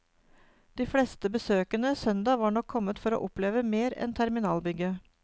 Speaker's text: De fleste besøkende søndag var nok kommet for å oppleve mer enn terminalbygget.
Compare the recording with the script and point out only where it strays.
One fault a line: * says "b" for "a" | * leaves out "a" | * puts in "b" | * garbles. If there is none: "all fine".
all fine